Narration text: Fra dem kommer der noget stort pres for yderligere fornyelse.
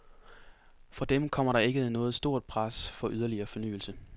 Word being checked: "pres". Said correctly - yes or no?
yes